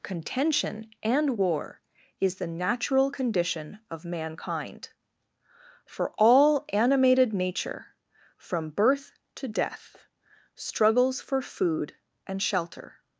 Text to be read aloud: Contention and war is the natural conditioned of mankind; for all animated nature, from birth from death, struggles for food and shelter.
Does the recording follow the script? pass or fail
fail